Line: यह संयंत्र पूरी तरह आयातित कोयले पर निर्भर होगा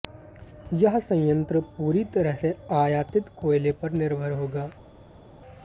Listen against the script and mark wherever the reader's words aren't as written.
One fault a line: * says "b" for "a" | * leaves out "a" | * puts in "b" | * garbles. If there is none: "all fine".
* puts in "से"